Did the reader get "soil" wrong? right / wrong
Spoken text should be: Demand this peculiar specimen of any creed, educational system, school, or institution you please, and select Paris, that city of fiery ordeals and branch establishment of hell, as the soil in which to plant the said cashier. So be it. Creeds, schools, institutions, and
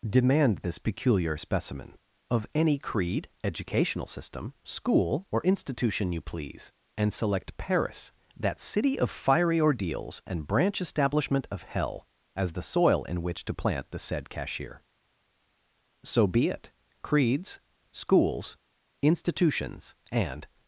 right